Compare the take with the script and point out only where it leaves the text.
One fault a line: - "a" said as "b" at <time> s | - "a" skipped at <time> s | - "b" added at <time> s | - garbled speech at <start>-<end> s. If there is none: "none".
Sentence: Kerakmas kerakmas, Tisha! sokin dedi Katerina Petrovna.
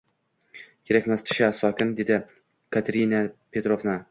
- "kerakmas" skipped at 1.2 s